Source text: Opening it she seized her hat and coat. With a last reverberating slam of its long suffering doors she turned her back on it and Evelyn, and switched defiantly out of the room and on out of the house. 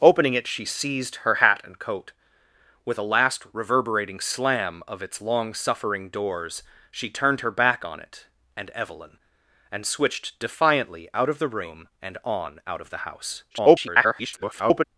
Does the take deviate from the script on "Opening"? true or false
false